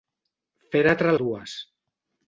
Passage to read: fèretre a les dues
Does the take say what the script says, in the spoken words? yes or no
no